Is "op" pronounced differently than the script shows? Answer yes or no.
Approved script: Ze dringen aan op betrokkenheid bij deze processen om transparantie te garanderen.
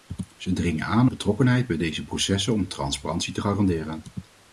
yes